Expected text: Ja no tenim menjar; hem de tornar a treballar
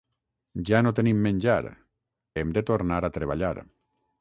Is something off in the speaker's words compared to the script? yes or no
no